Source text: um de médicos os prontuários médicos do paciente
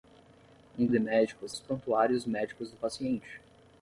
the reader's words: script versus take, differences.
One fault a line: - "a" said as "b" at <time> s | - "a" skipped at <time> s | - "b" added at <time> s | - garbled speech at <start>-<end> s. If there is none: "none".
none